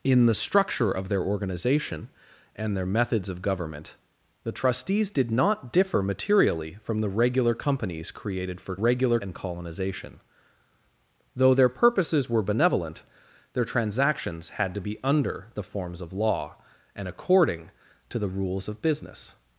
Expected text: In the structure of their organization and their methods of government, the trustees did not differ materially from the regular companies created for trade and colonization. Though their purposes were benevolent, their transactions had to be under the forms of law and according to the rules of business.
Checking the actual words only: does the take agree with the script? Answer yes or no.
no